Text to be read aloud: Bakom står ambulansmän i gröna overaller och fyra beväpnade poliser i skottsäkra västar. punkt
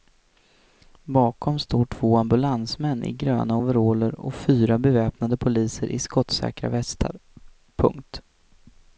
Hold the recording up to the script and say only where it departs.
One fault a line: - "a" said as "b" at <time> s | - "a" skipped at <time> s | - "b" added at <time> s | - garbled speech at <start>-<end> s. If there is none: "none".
- "två" added at 1.9 s